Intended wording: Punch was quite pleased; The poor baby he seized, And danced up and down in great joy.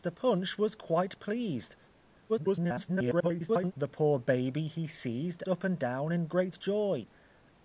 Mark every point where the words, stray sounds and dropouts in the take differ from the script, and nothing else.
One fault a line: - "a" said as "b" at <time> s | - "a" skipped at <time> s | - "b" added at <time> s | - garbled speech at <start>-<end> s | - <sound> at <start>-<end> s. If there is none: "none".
- garbled speech at 2.3-3.7 s
- "And danced" skipped at 5.4 s